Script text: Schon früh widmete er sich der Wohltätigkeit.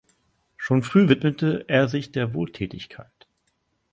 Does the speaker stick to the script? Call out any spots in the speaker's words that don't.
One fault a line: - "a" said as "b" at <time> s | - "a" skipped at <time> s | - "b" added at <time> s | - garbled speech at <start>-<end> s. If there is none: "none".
none